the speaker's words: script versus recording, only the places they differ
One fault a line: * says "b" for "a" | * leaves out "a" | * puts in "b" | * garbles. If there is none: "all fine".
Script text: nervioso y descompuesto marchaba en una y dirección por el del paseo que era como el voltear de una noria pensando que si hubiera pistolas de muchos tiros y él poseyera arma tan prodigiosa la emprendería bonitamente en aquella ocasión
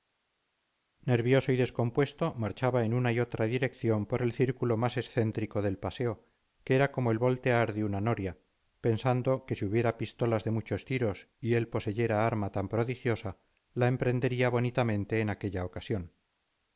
* puts in "otra"
* puts in "círculo más excéntrico"